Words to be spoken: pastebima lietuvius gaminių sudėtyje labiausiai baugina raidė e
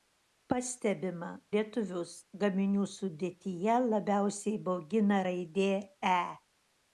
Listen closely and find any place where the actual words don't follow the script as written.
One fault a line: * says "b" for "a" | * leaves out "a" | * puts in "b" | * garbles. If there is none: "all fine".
all fine